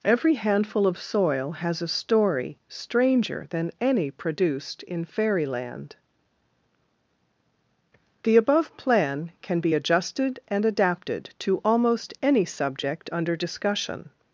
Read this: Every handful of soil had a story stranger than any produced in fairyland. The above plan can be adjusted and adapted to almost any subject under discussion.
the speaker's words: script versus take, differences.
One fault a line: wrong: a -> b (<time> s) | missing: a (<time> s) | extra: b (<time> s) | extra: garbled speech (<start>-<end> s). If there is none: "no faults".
wrong: had -> has (1.5 s)